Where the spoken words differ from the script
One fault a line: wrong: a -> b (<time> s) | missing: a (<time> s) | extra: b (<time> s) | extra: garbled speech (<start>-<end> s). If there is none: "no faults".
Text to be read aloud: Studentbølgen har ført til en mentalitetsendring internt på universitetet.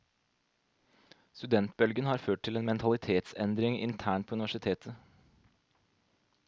no faults